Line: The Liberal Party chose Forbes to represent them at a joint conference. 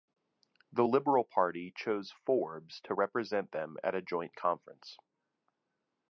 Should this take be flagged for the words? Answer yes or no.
no